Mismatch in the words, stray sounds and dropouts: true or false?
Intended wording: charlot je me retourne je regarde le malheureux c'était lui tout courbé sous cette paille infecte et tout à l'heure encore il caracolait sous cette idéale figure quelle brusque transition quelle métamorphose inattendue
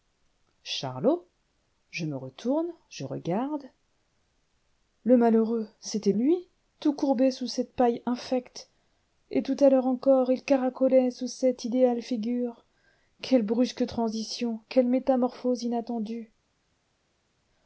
false